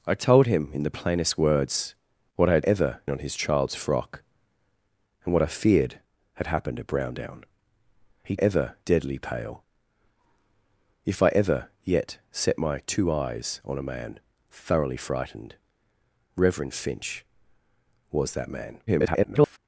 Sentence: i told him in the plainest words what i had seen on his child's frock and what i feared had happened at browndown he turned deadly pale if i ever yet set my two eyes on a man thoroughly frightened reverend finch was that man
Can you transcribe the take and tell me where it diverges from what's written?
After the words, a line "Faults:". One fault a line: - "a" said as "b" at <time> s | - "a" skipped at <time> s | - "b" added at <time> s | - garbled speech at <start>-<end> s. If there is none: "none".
i told him in the plainest words what i had ever on his child's frock and what i feared had happened at browndown he ever deadly pale if i ever yet set my two eyes on a man thoroughly frightened reverend finch was that man [garbled]
Faults:
- "seen" said as "ever" at 2.6 s
- "turned" said as "ever" at 8.4 s
- garbled speech at 18.9-19.6 s